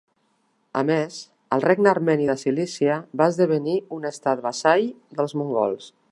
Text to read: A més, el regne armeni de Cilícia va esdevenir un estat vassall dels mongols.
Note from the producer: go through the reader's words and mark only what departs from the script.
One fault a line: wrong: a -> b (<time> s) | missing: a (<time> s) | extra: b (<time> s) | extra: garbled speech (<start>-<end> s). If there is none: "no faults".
no faults